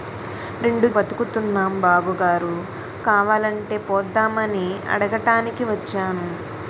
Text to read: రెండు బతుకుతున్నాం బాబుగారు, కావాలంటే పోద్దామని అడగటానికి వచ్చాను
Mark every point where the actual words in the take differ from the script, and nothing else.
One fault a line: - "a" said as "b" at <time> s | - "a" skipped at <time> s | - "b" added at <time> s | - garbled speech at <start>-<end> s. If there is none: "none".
none